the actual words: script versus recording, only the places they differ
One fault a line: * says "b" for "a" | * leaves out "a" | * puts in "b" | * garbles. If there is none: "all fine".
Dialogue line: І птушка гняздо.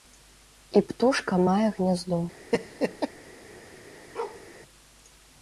* puts in "мае"